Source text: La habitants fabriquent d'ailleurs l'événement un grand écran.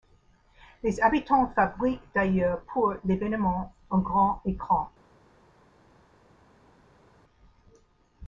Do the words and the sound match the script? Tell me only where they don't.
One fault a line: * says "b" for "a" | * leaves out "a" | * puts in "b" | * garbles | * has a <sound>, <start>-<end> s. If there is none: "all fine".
* says "Les" for "La"
* puts in "pour"